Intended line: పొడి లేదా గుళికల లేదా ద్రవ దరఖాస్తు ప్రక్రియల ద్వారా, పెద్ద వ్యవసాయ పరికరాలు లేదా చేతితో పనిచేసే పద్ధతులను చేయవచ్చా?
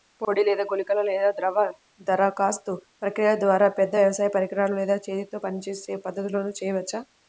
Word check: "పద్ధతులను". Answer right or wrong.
right